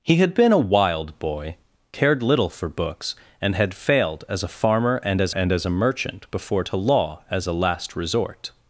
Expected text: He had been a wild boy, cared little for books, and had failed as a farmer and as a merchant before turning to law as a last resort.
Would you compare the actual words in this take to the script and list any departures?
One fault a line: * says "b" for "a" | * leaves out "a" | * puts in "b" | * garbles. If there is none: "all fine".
* puts in "and as"
* leaves out "turning"